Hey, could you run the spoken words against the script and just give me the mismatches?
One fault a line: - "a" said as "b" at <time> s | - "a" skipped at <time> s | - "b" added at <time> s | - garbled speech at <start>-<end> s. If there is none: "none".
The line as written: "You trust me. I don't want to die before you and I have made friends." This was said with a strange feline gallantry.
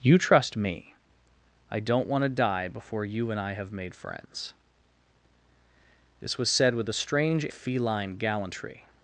none